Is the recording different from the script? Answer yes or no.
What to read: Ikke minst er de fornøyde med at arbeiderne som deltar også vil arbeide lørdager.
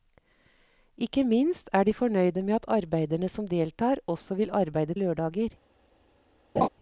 no